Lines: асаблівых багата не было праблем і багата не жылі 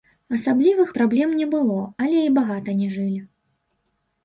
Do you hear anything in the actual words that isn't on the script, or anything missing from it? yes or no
yes